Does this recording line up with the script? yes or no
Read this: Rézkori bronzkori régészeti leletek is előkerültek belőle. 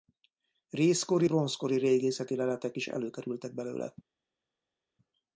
yes